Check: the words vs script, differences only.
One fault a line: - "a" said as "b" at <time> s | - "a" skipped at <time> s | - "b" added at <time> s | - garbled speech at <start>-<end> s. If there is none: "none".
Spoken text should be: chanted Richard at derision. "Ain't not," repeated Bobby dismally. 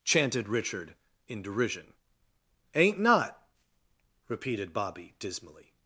- "at" said as "in" at 1.3 s